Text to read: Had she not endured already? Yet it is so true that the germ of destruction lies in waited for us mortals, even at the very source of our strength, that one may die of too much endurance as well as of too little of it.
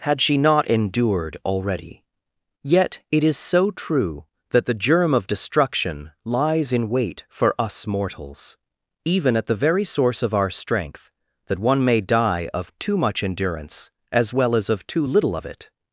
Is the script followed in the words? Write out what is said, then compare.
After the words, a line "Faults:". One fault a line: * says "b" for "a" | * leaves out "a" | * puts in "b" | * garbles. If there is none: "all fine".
Had she not endured already? Yet it is so true that the germ of destruction lies in wait for us mortals, even at the very source of our strength, that one may die of too much endurance as well as of too little of it.
Faults:
* says "wait" for "waited"